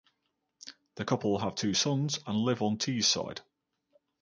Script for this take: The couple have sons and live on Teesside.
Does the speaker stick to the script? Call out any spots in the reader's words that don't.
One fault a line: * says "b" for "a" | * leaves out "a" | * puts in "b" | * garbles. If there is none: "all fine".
* puts in "two"